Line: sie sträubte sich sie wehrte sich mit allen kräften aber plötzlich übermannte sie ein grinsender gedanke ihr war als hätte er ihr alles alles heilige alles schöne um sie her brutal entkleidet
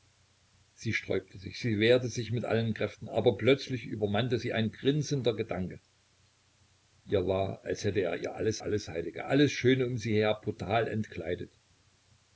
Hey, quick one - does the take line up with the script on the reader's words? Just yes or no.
yes